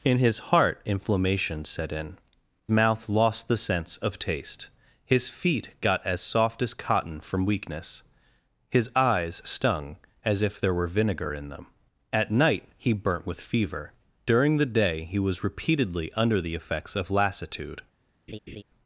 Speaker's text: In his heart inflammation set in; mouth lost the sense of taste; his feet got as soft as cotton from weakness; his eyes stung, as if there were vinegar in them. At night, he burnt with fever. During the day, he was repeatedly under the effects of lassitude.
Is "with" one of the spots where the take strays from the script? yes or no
no